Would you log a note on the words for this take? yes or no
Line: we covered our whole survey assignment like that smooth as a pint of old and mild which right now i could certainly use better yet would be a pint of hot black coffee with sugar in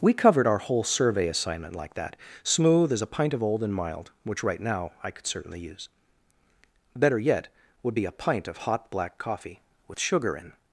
no